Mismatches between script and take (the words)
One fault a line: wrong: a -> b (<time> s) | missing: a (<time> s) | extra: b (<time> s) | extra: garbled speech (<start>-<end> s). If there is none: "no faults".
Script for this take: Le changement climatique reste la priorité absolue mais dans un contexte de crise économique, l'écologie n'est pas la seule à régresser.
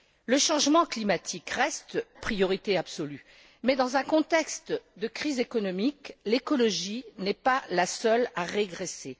missing: la (2.0 s)